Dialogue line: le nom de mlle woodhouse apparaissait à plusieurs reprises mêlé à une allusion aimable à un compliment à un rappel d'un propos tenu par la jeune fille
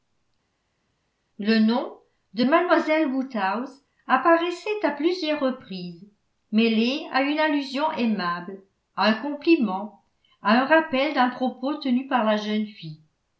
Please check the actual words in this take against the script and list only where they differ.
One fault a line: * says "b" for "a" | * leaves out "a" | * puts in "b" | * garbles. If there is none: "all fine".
all fine